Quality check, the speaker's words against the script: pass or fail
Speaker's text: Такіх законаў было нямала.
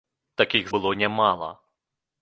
fail